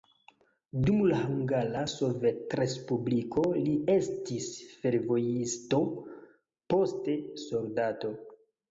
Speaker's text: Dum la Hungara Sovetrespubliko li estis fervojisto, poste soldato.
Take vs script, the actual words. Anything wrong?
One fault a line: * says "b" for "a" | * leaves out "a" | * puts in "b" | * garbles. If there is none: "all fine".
all fine